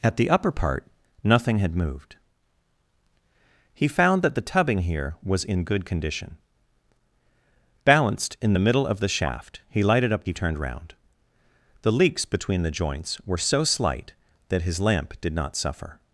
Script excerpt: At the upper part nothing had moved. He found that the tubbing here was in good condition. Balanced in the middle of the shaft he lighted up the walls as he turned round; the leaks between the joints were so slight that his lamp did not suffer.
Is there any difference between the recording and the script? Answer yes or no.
yes